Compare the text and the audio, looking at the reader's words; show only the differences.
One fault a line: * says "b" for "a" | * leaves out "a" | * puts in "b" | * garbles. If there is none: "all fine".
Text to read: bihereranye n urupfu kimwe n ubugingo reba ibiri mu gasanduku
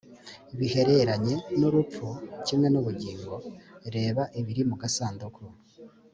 all fine